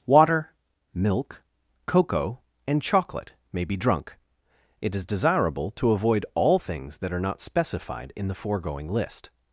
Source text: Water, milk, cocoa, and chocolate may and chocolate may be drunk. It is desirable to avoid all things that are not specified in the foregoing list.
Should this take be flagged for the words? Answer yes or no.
yes